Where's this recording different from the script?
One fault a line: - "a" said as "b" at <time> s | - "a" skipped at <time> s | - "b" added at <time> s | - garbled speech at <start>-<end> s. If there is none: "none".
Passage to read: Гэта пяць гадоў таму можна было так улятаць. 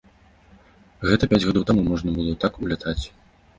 none